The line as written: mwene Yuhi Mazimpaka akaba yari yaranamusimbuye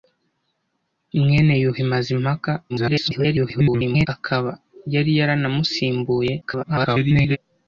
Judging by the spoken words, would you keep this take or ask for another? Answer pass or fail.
fail